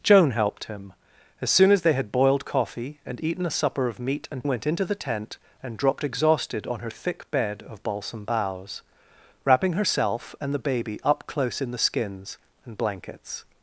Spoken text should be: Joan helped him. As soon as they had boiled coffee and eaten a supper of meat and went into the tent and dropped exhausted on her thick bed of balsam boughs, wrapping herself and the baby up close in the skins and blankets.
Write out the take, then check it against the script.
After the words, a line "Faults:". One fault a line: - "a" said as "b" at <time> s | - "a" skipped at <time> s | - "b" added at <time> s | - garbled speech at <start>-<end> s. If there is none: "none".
Joan helped him. As soon as they had boiled coffee and eaten a supper of meat and went into the tent and dropped exhausted on her thick bed of balsam boughs, wrapping herself and the baby up close in the skins and blankets.
Faults:
none